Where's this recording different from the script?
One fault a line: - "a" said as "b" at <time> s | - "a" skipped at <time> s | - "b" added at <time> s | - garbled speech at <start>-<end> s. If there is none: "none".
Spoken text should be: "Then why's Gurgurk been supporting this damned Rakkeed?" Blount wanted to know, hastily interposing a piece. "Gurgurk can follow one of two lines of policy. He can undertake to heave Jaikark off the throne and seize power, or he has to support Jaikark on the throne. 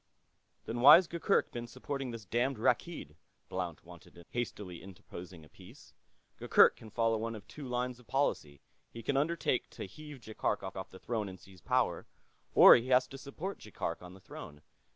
- "know" skipped at 4.2 s
- "off" added at 10.8 s